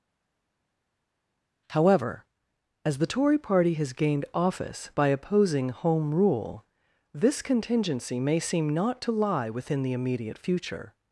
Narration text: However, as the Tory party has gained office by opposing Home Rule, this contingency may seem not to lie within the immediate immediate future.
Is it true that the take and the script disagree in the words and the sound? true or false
true